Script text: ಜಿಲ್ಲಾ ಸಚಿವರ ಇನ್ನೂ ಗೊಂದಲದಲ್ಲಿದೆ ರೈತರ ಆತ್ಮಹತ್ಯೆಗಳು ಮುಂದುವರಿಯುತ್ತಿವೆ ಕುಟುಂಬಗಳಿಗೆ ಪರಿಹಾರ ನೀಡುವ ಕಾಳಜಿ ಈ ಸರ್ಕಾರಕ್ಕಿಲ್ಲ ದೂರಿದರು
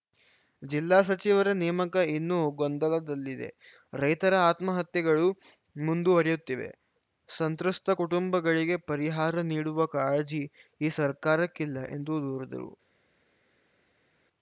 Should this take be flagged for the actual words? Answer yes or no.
yes